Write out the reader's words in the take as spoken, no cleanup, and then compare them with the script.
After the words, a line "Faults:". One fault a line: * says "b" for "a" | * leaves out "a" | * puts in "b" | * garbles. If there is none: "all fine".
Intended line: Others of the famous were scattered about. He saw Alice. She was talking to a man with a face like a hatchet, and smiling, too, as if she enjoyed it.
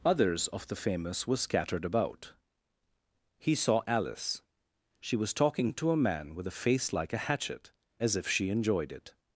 Others of the famous were scattered about. He saw Alice. She was talking to a man with a face like a hatchet, as if she enjoyed it.
Faults:
* leaves out "and smiling too"